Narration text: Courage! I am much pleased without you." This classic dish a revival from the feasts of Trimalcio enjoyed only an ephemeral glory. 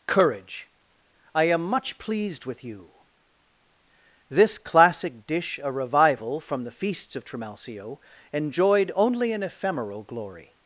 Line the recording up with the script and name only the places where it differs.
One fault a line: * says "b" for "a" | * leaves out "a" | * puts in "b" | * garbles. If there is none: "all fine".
* says "with" for "without"